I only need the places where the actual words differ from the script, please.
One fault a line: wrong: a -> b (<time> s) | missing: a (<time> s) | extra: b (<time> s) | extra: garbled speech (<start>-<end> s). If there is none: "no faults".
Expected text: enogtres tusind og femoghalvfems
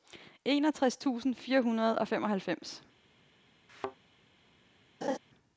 extra: fire hundrede (1.4 s)